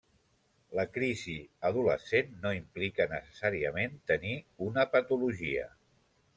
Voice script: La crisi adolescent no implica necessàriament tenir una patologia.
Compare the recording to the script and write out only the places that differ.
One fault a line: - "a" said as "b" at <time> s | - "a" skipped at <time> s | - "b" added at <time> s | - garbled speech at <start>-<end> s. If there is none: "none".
none